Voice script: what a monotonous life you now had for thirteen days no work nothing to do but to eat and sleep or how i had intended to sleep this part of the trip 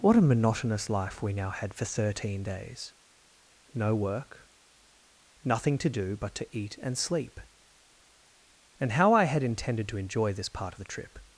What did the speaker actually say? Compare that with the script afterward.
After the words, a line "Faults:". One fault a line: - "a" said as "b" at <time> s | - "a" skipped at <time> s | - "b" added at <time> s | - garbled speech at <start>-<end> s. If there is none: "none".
what a monotonous life we now had for thirteen days no work nothing to do but to eat and sleep and how i had intended to enjoy this part of the trip
Faults:
- "you" said as "we" at 1.2 s
- "or" said as "and" at 8.8 s
- "sleep" said as "enjoy" at 10.0 s